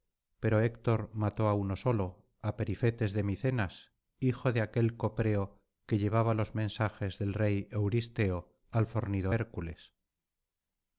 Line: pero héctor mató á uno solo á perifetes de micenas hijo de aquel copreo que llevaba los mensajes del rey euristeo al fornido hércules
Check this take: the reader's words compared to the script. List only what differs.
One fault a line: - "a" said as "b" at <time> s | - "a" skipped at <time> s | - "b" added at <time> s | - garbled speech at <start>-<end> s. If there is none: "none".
none